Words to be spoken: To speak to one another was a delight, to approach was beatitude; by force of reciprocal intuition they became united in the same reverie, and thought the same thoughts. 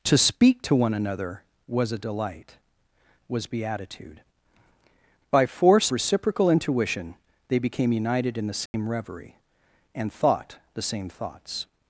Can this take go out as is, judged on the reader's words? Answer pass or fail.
fail